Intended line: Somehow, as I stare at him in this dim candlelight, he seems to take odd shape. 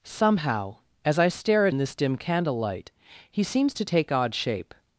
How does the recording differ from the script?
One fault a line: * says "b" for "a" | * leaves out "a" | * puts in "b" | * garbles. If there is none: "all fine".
* leaves out "him"